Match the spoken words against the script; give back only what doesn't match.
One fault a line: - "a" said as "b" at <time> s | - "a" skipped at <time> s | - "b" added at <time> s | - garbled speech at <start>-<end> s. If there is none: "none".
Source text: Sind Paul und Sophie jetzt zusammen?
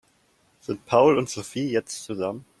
none